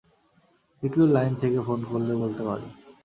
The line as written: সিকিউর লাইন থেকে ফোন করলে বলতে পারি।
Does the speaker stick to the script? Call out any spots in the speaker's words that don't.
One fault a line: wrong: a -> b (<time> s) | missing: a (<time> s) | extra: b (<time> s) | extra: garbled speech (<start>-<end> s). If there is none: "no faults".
no faults